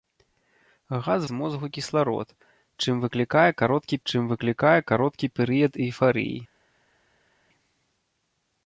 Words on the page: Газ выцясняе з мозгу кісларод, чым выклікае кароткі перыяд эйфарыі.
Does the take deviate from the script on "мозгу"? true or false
false